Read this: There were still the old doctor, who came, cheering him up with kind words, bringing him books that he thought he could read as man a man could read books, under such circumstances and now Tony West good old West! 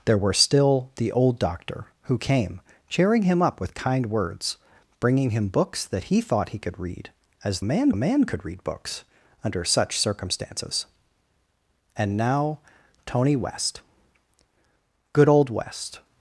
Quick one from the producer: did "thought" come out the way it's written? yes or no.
yes